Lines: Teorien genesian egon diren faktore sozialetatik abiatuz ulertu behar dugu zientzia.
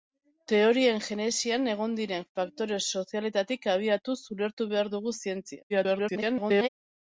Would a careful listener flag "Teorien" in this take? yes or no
no